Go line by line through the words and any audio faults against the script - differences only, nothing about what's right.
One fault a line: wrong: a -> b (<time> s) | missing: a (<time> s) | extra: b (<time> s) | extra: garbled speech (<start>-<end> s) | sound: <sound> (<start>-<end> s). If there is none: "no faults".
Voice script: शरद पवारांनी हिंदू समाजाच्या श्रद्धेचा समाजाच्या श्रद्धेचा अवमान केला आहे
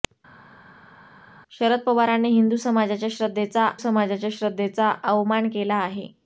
no faults